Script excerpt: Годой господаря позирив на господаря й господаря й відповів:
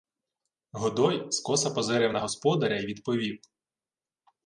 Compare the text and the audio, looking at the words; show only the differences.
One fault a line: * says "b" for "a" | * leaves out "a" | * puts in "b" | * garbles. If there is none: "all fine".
* says "скоса" for "господаря"
* leaves out "господаря й"